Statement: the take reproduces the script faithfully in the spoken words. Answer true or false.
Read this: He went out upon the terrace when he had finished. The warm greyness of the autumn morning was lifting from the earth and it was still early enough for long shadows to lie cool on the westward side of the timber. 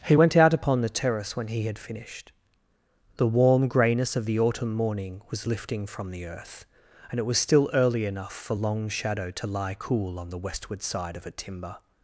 false